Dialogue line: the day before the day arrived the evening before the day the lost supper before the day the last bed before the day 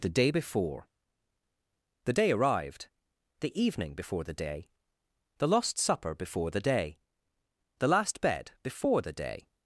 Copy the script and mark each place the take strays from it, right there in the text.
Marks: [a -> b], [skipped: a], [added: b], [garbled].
the day before the day arrived the evening before the day the lost supper before the day the last bed before the day